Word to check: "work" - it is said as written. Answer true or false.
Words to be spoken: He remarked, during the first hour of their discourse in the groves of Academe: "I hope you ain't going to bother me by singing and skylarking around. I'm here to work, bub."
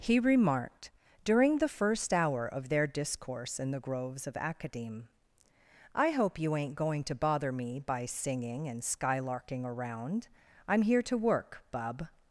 true